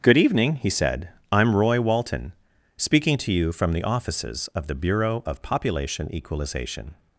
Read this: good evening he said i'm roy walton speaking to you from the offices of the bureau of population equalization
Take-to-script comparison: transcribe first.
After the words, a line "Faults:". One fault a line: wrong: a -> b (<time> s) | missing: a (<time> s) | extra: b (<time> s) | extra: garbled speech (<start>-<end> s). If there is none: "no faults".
good evening he said i'm roy walton speaking to you from the offices of the bureau of population equalization
Faults:
no faults